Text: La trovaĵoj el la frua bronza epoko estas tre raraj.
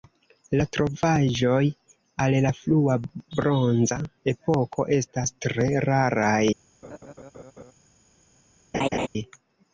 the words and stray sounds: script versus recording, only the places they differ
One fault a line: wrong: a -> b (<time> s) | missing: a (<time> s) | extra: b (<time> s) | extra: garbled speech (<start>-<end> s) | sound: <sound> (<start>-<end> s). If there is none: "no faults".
sound: laugh (6.8-7.7 s)
sound: laugh (8.7-9.1 s)